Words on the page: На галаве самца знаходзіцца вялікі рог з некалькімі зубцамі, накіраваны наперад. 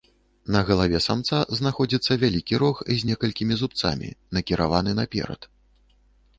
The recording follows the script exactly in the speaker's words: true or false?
true